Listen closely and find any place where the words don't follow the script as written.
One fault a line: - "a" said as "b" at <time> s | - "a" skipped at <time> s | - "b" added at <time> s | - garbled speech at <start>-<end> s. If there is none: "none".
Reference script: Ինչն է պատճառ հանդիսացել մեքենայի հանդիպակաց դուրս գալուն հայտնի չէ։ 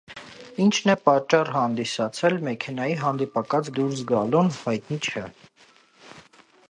none